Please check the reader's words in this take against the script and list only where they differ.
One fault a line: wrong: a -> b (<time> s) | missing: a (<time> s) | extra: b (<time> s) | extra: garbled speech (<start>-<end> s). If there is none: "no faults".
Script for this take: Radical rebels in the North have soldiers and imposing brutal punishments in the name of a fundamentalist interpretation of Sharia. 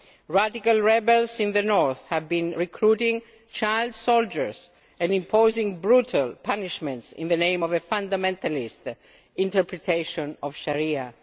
extra: been recruiting child (2.3 s)